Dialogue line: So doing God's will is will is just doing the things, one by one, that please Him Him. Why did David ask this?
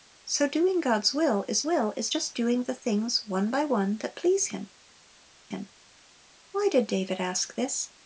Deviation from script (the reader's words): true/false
false